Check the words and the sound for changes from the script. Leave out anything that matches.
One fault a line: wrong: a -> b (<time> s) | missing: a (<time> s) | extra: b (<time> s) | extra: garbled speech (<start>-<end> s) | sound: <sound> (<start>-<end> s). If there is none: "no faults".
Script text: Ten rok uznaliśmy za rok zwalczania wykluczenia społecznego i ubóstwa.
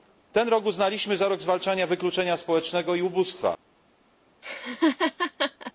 sound: laugh (4.4-5.7 s)